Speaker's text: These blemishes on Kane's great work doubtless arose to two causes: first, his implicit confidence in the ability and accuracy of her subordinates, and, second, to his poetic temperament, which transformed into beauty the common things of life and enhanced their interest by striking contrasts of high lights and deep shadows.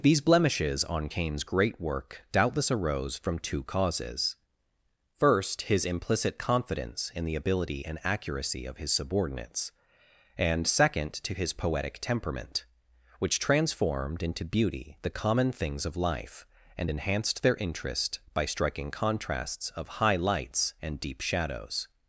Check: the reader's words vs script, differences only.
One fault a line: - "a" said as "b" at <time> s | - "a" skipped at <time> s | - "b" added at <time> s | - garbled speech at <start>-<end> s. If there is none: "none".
- "to" said as "from" at 3.2 s
- "her" said as "his" at 8.8 s